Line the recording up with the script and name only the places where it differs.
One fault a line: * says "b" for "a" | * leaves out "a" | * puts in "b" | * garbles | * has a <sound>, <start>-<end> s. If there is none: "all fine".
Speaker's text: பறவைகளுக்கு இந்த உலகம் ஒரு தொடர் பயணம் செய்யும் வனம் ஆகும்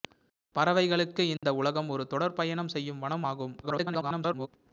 * has a dropout, 1.4-1.4 s
* garbles